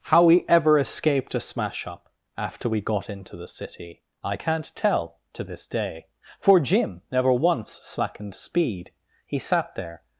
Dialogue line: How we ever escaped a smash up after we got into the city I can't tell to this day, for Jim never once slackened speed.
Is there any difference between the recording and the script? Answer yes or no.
yes